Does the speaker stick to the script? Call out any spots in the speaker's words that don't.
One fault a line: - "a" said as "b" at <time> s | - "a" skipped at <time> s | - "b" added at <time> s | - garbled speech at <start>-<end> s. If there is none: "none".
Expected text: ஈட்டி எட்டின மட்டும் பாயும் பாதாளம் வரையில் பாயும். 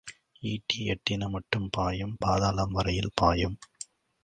none